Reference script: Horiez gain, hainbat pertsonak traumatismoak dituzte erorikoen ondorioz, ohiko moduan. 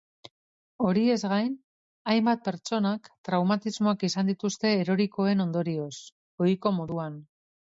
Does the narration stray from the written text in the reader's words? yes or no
yes